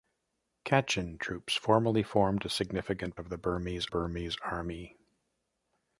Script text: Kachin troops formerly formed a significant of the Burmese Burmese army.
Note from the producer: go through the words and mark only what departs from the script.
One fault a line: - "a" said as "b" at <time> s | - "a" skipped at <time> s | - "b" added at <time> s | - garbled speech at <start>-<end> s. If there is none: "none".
none